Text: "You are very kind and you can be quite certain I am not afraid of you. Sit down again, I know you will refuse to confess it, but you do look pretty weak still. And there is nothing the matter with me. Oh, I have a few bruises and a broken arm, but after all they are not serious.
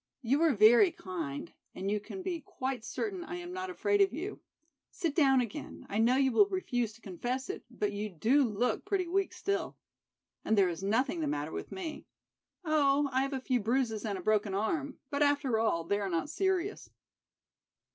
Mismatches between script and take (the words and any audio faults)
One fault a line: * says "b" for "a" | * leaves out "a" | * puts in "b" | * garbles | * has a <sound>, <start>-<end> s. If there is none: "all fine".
all fine